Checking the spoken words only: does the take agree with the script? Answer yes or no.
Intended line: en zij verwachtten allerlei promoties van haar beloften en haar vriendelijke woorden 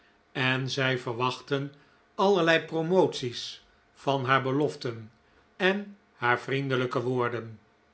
yes